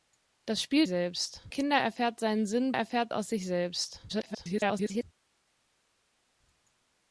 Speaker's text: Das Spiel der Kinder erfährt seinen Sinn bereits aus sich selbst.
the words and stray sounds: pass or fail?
fail